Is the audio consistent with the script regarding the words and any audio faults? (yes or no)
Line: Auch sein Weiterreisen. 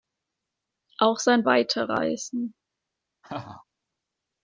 no